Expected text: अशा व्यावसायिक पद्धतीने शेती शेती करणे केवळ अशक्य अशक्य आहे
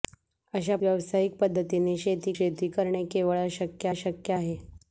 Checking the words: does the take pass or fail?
pass